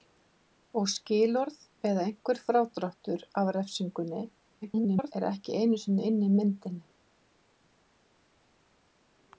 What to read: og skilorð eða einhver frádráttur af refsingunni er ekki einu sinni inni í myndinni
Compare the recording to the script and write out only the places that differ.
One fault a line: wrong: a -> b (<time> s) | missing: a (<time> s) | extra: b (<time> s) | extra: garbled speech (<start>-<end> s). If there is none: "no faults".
extra: garbled speech (4.6-5.1 s)